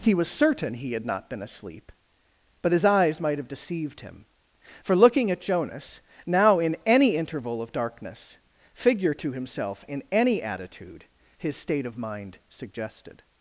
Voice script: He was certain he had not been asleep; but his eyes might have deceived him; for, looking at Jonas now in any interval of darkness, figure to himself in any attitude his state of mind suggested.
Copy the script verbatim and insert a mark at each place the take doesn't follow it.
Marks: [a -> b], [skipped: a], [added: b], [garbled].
He was certain he had not been asleep; but his eyes might have deceived him; for, looking at Jonas now in any interval of darkness, figure to himself in any attitude his state of mind suggested.